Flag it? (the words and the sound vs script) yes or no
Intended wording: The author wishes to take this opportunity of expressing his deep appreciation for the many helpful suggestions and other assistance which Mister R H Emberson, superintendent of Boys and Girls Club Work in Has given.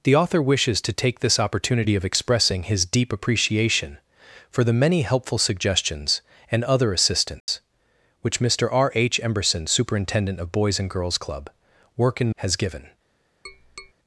yes